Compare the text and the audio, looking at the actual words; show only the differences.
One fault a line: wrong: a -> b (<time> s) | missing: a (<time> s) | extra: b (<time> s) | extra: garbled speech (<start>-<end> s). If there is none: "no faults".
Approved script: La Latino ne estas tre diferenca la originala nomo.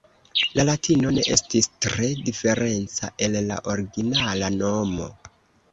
wrong: estas -> estis (1.4 s)
extra: el (3.3 s)